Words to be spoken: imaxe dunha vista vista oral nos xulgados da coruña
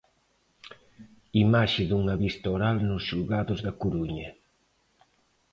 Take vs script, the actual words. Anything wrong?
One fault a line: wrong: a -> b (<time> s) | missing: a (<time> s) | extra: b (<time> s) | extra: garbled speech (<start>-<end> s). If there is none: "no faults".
missing: vista (2.5 s)